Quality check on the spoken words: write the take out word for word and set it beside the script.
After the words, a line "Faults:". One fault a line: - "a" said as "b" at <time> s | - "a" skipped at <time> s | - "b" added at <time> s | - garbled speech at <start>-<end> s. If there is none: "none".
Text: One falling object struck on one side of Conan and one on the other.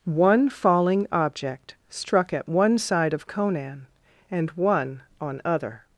One falling object struck at one side of Conan and one on other.
Faults:
- "on" said as "at" at 2.3 s
- "the" skipped at 5.4 s